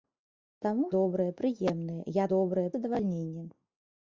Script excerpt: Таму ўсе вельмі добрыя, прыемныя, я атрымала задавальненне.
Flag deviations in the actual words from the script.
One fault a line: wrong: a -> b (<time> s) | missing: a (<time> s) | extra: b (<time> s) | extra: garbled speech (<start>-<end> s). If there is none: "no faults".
missing: ўсе вельмі (0.8 s)
wrong: атрымала -> добрыя (2.3 s)